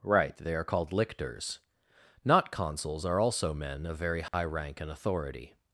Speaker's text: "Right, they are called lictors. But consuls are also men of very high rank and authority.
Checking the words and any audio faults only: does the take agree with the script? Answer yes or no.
no